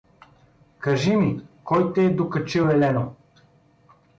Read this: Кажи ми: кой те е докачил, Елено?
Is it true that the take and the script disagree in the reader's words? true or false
false